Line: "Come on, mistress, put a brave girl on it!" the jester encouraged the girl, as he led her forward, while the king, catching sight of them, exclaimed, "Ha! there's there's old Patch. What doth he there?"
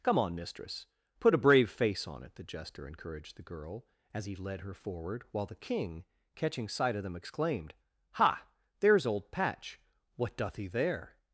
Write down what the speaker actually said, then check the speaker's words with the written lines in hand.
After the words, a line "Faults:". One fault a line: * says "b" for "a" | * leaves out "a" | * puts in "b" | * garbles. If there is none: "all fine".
"Come on, mistress, put a brave face on it!" the jester encouraged the girl, as he led her forward, while the king, catching sight of them, exclaimed, "Ha! there's old Patch. What doth he there?"
Faults:
* says "face" for "girl"
* leaves out "there's"